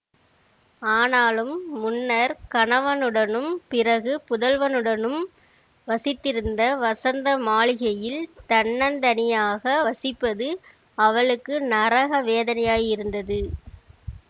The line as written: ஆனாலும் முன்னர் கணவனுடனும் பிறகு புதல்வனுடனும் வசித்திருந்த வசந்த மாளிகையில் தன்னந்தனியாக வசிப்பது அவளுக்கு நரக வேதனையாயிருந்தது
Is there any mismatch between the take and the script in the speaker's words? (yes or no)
no